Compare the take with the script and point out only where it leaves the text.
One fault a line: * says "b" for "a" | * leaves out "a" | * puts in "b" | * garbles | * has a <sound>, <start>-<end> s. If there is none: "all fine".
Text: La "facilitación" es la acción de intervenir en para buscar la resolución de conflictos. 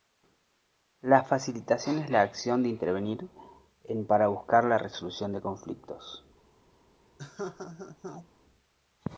* has a laugh, 7.2-8.3 s